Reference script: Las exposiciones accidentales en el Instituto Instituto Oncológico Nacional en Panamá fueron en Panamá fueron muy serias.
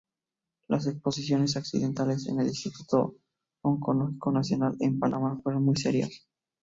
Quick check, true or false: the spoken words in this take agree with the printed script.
false